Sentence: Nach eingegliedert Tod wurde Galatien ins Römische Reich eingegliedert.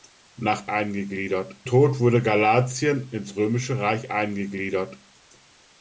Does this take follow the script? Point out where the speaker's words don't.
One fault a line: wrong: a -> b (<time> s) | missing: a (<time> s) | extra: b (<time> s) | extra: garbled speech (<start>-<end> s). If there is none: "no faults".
no faults